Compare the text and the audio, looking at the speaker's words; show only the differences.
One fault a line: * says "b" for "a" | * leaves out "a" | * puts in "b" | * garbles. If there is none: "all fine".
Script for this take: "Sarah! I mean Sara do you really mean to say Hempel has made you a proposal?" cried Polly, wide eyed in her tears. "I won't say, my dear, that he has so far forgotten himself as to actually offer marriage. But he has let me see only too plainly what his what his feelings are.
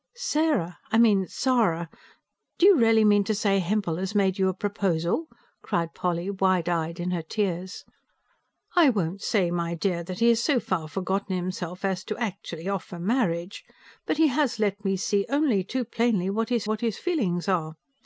all fine